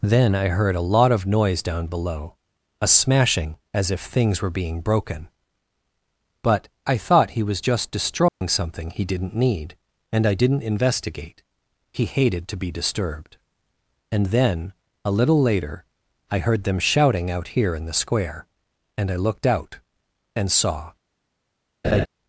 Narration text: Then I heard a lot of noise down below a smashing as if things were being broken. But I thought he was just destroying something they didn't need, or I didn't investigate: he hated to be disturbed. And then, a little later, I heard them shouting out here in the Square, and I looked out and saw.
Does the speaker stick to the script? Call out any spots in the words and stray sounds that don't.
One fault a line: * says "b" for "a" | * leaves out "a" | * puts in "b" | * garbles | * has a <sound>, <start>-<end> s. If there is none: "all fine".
* has a dropout, 8.3-8.4 s
* says "he" for "they"
* says "and" for "or"
* has a laugh, 21.8-22.1 s